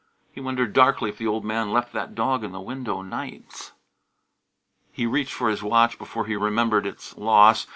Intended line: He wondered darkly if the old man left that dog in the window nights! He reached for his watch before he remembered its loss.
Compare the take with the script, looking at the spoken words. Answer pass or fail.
pass